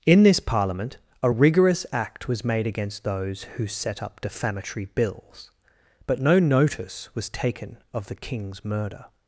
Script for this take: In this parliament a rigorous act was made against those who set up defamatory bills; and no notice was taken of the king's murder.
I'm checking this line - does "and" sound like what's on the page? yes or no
no